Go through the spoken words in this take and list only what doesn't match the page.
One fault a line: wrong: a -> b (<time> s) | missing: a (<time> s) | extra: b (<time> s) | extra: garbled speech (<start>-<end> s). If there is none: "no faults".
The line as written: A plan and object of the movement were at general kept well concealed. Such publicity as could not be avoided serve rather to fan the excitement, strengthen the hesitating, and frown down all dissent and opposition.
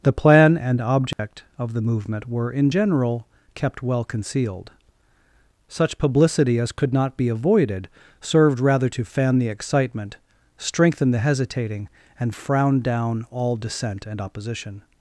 wrong: A -> The (0.0 s)
wrong: at -> in (2.5 s)
wrong: serve -> served (8.2 s)